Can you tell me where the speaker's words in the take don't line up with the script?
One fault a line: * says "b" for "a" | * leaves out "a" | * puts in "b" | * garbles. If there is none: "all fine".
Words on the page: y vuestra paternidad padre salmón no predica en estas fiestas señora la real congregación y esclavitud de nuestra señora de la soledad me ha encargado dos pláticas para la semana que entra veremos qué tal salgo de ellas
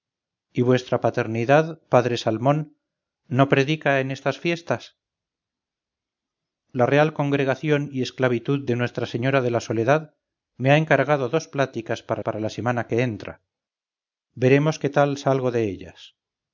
* leaves out "señora"
* puts in "para"